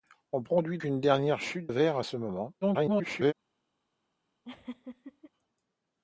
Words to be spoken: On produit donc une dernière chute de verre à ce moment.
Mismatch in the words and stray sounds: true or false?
true